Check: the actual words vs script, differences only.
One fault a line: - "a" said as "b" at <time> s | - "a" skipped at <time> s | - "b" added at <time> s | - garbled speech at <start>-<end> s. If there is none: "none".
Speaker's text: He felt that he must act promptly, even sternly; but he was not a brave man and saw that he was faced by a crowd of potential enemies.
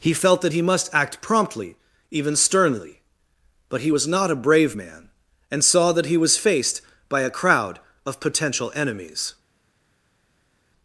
none